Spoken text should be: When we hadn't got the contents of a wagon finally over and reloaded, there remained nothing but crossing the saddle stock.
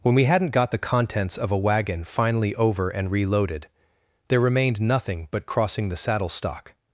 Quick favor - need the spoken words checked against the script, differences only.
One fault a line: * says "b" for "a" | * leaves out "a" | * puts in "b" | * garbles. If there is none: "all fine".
all fine